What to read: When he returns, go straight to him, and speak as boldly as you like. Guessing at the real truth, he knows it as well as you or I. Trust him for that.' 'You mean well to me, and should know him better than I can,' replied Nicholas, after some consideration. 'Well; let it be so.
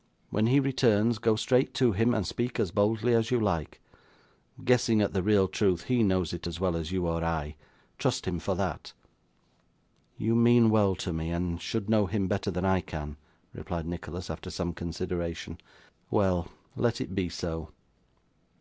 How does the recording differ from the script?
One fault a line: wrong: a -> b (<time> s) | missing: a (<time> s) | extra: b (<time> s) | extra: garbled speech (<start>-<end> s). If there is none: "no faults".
no faults